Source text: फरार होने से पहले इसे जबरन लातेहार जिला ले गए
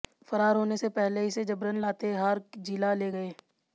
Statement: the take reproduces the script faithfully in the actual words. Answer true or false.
true